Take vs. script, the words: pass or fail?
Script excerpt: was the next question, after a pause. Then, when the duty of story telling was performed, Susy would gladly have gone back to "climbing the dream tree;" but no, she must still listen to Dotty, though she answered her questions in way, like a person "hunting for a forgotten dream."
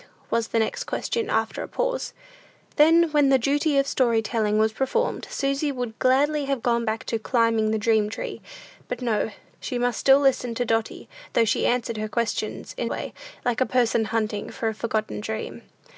pass